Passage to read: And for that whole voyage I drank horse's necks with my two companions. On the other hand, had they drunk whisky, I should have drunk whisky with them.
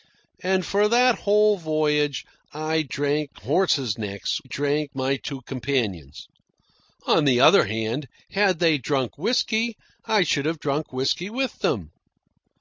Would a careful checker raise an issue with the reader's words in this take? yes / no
yes